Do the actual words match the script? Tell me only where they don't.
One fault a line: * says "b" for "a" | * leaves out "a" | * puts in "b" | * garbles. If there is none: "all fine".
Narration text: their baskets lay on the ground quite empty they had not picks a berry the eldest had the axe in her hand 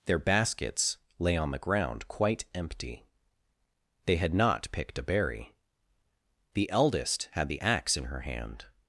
* says "picked" for "picks"